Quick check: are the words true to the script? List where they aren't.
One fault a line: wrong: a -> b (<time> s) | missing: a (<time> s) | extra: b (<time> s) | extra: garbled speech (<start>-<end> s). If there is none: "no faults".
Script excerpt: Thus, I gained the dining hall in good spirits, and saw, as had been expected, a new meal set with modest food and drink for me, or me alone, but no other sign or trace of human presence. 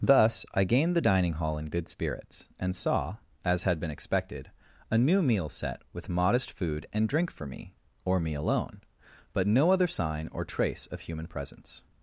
no faults